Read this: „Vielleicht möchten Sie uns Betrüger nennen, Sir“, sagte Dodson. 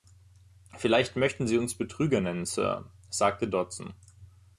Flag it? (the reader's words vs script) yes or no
no